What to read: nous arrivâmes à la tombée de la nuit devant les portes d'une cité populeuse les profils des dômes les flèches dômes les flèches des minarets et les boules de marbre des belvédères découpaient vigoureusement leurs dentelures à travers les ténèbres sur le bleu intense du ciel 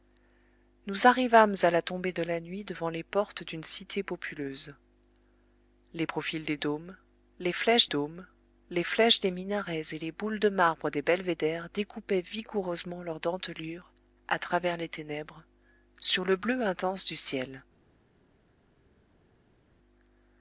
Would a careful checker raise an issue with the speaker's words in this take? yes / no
no